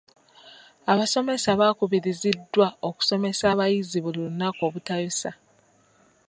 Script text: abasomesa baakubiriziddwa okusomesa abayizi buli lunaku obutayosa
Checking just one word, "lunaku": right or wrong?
right